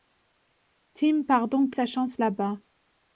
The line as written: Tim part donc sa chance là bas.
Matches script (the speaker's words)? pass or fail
pass